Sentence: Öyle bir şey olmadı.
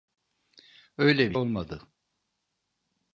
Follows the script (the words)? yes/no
no